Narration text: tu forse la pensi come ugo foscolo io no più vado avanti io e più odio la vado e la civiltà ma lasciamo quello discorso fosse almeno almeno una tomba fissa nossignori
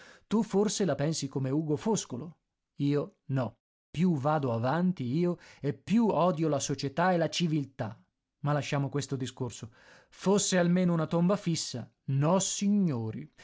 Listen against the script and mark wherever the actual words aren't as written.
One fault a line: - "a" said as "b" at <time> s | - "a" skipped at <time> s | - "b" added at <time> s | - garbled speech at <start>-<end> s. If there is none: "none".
- "vado" said as "società" at 6.6 s
- "quello" said as "questo" at 8.9 s
- "almeno" skipped at 10.9 s